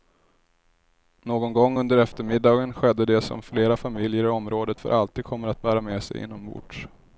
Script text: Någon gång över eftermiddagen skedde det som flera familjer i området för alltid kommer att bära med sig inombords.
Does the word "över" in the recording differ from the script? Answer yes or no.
yes